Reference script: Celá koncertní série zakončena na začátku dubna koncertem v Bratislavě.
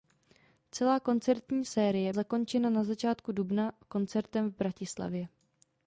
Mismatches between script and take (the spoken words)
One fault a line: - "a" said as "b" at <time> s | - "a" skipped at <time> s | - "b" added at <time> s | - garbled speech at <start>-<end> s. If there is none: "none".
none